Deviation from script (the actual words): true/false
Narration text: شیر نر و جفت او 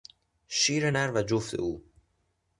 false